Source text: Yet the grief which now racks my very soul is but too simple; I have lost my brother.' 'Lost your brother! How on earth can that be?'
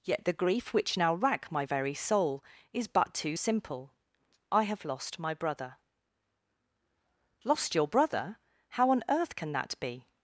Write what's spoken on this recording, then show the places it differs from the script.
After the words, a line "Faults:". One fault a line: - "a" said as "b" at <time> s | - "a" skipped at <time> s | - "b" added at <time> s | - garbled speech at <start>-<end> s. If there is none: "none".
Yet the grief which now rack my very soul is but too simple; I have lost my brother.' 'Lost your brother! How on earth can that be?'
Faults:
- "racks" said as "rack" at 1.1 s